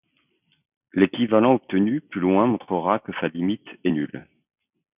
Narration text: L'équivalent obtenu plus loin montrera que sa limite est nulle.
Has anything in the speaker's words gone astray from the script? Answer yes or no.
no